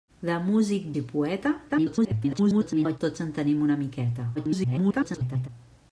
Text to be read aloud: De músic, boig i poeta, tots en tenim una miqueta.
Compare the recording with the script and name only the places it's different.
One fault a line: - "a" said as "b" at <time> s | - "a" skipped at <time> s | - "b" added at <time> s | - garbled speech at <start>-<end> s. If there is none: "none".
- "boig" skipped at 0.9 s
- garbled speech at 1.7-3.0 s
- garbled speech at 4.3-5.5 s